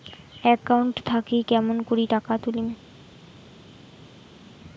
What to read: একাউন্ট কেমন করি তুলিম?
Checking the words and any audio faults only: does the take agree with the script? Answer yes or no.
no